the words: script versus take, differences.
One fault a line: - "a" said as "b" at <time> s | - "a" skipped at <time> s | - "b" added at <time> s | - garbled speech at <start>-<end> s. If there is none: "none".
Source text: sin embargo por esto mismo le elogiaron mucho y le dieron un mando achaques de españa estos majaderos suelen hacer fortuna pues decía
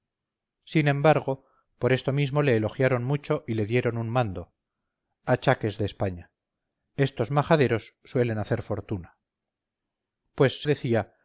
none